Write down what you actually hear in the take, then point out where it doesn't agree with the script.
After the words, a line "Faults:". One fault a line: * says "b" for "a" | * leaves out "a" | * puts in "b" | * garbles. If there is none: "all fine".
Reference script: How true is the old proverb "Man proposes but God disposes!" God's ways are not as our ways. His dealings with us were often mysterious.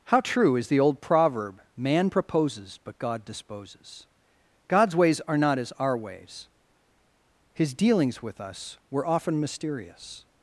How true is the old proverb "Man proposes but God disposes!" God's ways are not as our ways. His dealings with us were often mysterious.
Faults:
all fine